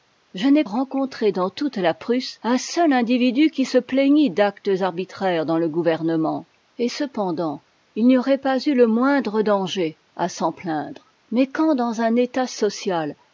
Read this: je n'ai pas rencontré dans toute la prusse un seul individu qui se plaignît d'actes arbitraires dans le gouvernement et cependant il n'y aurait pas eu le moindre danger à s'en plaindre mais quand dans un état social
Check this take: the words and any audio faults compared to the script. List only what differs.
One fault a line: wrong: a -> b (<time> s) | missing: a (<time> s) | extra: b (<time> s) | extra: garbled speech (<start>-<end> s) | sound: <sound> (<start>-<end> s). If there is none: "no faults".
missing: pas (0.6 s)